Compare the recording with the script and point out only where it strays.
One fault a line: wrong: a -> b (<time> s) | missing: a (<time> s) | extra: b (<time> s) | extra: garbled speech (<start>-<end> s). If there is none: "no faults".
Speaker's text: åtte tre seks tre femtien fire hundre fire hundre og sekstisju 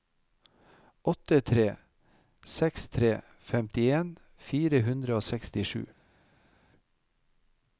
missing: fire hundre (5.2 s)